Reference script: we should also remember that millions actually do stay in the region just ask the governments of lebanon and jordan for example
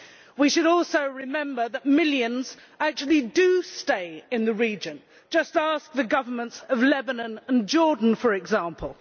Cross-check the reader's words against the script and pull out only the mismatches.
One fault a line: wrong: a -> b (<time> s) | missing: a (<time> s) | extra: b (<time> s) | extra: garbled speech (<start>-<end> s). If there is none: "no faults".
no faults